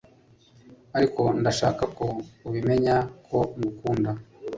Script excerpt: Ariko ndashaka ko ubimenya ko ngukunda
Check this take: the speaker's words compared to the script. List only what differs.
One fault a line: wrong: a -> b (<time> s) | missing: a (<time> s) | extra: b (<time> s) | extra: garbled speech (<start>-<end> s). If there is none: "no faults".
no faults